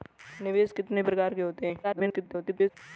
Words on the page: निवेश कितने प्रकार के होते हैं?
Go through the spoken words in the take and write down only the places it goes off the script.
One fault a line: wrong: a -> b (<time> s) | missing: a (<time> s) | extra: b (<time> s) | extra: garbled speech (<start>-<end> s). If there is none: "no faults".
extra: garbled speech (1.8-2.7 s)